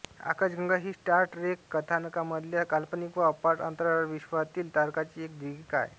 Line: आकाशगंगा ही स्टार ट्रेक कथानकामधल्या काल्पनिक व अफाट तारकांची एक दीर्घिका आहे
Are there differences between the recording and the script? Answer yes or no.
yes